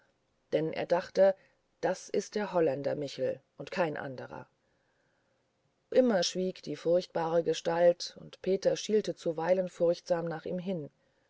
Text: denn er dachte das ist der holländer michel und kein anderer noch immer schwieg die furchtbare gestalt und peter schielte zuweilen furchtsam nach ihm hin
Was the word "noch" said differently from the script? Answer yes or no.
yes